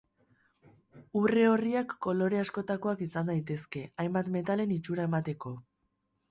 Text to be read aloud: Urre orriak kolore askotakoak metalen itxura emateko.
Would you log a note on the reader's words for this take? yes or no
yes